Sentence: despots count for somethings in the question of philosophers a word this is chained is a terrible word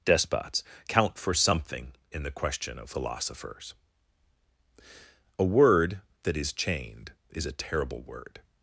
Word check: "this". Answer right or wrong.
wrong